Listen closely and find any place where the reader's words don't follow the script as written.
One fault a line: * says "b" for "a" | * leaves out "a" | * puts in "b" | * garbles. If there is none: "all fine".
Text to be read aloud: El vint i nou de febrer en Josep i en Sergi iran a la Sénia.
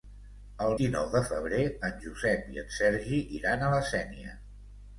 * leaves out "vint"